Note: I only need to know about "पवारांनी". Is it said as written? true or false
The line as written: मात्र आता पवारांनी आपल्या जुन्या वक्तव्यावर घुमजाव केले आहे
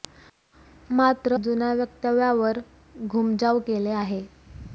false